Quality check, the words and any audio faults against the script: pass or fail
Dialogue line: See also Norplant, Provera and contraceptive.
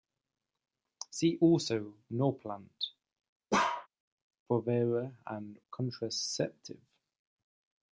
fail